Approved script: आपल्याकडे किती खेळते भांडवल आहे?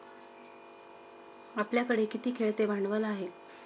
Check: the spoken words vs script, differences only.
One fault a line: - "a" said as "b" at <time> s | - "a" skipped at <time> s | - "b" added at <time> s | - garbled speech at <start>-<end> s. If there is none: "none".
none